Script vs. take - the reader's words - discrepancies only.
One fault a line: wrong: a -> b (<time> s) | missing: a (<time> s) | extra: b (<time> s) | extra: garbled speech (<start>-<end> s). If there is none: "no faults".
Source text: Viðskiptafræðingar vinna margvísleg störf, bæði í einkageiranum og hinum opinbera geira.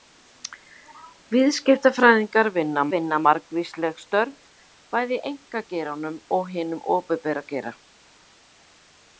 extra: vinna (2.9 s)